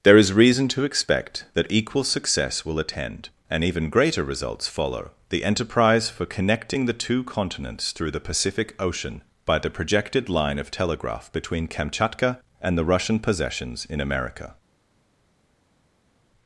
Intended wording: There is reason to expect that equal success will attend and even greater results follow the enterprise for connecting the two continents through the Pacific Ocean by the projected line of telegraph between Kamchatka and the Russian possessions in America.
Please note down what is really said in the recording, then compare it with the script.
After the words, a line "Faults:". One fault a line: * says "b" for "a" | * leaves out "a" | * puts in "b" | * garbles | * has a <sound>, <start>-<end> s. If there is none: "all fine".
There is reason to expect that equal success will attend and even greater results follow the enterprise for connecting the two continents through the Pacific Ocean by the projected line of telegraph between Kamchatka and the Russian possessions in America.
Faults:
all fine